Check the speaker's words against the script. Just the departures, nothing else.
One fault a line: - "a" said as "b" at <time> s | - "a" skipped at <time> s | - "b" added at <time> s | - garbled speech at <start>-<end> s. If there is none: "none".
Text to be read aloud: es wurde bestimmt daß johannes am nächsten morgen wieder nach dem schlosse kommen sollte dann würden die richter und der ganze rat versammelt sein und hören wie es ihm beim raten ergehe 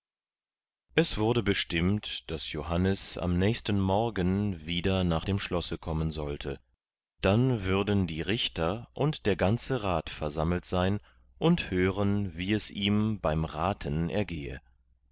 none